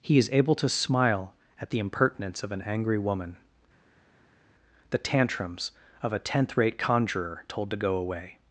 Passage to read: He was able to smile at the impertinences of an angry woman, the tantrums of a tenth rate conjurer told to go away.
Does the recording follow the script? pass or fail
fail